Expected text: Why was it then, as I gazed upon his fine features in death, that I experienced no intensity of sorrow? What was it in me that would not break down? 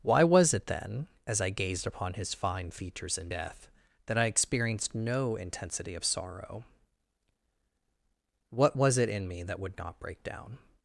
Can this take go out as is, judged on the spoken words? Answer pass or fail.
pass